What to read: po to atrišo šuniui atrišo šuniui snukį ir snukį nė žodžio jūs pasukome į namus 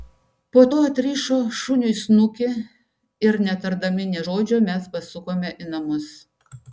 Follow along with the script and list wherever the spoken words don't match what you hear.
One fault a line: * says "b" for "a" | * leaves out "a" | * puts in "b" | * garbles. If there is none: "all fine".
* leaves out "atrišo šuniui"
* says "netardami" for "snukį"
* says "mes" for "jūs"